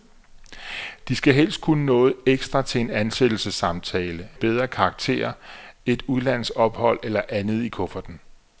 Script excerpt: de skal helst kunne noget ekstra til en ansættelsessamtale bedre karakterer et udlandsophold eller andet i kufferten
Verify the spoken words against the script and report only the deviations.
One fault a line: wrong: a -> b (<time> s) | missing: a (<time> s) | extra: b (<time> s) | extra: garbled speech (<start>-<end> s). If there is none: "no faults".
no faults